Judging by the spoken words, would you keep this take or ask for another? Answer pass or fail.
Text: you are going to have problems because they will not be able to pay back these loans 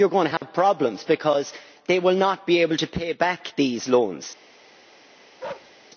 pass